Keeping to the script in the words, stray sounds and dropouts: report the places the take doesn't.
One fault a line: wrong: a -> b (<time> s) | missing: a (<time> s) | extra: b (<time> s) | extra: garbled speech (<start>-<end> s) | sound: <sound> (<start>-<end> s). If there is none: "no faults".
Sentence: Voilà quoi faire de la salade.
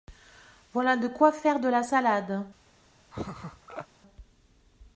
extra: de (1.0 s)
sound: laugh (3.1-3.9 s)